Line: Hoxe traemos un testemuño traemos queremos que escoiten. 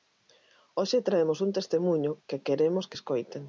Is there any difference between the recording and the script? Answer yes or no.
yes